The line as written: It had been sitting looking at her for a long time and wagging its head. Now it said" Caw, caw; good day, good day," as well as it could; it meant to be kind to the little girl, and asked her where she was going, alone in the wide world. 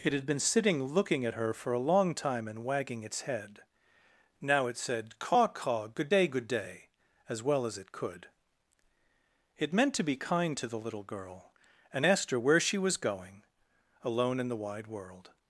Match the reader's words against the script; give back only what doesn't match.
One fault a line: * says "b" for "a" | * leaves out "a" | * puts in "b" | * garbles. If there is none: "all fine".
all fine